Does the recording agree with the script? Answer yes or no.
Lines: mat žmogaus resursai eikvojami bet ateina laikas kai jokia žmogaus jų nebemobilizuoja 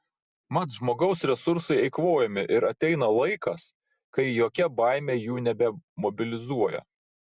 no